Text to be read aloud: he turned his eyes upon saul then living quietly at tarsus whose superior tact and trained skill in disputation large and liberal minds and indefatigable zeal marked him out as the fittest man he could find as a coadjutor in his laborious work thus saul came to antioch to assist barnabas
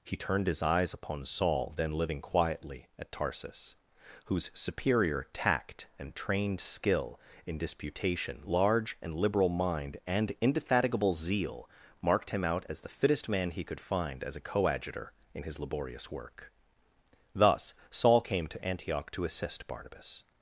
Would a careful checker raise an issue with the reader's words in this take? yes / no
yes